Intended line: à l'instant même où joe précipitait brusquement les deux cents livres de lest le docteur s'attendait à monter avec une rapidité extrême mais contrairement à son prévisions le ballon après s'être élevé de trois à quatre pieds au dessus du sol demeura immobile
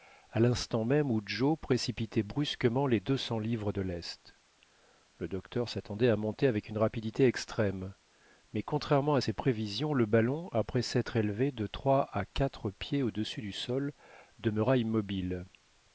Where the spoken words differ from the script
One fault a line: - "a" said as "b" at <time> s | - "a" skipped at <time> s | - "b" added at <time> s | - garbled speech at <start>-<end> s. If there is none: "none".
- "son" said as "ses" at 9.2 s